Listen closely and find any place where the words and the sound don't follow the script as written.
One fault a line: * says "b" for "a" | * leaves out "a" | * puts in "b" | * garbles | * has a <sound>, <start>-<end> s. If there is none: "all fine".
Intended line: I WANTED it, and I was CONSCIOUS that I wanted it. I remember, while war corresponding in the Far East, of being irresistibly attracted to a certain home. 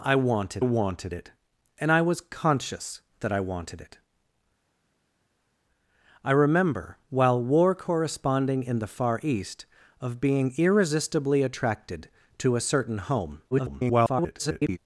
* puts in "WANTED"
* garbles